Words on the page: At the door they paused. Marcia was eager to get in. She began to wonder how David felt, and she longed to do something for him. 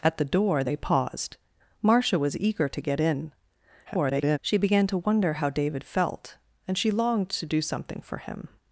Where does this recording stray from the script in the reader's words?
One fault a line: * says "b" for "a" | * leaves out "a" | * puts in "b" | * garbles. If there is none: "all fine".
* garbles